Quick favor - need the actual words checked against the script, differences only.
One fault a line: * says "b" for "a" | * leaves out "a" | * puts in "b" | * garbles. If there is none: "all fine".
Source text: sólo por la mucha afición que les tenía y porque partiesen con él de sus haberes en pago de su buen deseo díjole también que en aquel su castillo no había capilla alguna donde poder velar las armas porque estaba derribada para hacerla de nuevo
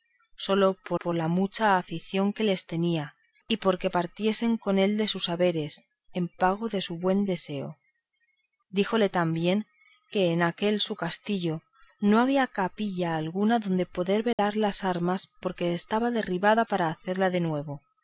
* puts in "por"